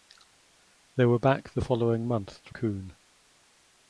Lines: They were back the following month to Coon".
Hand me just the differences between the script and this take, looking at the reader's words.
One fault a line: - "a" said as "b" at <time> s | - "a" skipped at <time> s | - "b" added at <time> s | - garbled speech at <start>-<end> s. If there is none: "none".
none